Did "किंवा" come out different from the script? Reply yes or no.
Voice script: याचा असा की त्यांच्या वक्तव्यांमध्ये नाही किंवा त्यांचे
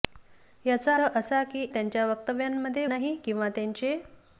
no